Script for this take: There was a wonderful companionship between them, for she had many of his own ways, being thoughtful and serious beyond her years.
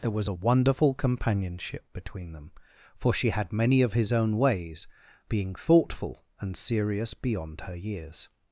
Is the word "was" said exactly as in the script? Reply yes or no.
yes